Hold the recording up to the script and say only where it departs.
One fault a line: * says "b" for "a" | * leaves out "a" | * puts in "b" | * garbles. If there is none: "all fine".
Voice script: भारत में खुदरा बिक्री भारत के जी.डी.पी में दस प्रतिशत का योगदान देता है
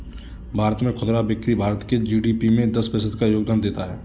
all fine